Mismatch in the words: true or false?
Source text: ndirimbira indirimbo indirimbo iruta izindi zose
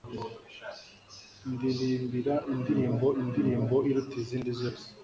false